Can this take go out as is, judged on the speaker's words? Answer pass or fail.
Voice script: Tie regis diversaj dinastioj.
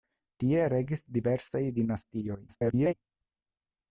fail